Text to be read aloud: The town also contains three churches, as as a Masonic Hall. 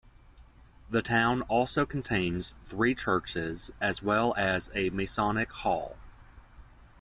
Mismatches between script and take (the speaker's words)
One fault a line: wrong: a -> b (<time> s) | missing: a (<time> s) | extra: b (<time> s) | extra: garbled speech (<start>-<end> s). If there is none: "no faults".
extra: well (4.0 s)